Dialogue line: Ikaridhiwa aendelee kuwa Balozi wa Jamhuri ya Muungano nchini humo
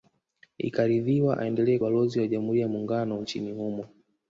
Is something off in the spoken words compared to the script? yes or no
yes